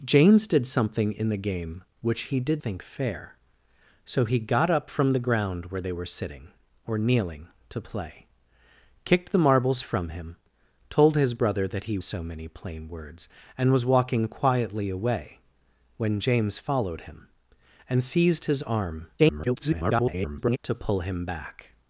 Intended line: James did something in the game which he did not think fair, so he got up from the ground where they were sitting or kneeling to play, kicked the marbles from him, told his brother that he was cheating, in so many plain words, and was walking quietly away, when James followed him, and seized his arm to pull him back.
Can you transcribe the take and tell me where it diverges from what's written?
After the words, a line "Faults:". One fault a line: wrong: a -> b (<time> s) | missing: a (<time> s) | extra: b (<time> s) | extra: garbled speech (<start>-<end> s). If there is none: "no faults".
James did something in the game which he did think fair, so he got up from the ground where they were sitting or kneeling to play, kicked the marbles from him, told his brother that he so many plain words, and was walking quietly away, when James followed him, and seized his arm [garbled] to pull him back.
Faults:
missing: not (2.6 s)
missing: was cheating in (12.0 s)
extra: garbled speech (19.2-20.6 s)